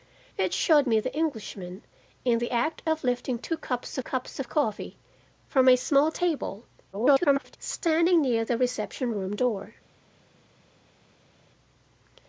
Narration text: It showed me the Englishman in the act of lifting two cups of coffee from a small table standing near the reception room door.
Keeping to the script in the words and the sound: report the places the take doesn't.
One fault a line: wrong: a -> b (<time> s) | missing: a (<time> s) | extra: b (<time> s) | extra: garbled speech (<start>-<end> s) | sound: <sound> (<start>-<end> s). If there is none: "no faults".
extra: cups (4.0 s)
extra: garbled speech (6.9-7.6 s)